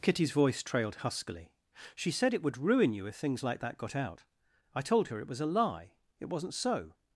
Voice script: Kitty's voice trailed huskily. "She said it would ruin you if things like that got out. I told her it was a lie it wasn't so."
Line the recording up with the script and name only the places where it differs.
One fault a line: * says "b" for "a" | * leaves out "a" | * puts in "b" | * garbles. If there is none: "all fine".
all fine